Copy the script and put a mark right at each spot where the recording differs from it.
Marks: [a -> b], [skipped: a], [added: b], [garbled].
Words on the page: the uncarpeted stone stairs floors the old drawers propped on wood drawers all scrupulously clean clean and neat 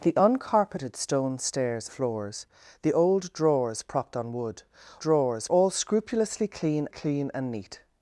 the uncarpeted stone stairs floors the old drawers propped on wood drawers all scrupulously clean clean and neat